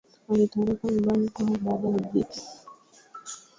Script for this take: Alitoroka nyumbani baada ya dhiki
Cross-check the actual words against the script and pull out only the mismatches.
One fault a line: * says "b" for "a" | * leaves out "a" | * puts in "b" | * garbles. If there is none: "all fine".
* puts in "kwao"